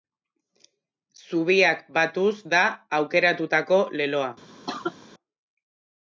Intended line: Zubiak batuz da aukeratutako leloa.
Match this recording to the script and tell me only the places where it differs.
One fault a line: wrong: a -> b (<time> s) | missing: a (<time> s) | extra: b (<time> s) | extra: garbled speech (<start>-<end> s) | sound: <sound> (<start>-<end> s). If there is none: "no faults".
sound: cough (4.7-5.0 s)